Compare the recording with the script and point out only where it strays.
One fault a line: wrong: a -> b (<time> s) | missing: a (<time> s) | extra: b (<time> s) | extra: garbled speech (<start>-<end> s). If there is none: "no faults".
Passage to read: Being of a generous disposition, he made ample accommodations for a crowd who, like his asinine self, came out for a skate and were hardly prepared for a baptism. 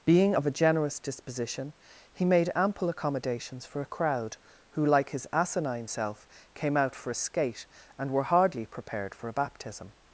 no faults